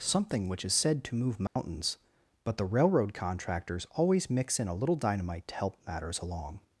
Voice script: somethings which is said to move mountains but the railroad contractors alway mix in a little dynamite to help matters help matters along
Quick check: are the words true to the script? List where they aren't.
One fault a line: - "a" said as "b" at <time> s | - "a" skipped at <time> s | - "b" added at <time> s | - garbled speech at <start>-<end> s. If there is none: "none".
- "somethings" said as "something" at 0.0 s
- "alway" said as "always" at 3.9 s
- "help matters" skipped at 6.2 s